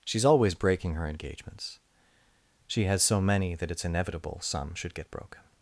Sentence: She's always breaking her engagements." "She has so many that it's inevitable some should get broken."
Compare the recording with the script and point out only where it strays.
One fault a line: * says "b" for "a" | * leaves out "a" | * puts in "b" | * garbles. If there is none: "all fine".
all fine